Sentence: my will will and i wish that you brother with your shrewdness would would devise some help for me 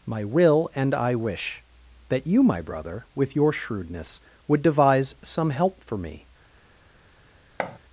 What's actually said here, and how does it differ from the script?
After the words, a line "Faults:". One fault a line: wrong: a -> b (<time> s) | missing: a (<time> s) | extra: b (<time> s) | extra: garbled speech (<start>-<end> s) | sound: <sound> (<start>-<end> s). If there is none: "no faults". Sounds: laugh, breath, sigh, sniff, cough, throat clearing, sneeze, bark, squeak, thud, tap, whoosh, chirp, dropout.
my will and i wish that you my brother with your shrewdness would devise some help for me
Faults:
missing: will (0.7 s)
extra: my (2.4 s)
missing: would (4.6 s)
sound: thud (7.6-7.8 s)